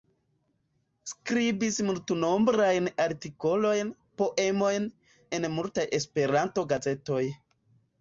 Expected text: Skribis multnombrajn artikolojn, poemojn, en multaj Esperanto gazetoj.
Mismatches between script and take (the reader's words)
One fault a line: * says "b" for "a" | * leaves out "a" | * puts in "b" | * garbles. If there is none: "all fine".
all fine